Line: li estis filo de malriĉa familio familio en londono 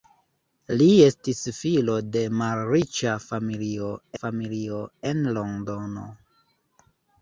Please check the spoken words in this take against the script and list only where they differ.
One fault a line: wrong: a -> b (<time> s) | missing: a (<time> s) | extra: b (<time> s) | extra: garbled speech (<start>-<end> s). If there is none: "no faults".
no faults